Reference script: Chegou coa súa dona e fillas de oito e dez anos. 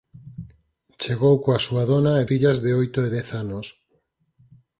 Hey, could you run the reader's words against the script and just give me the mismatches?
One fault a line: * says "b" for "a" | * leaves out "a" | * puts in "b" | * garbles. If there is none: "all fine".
all fine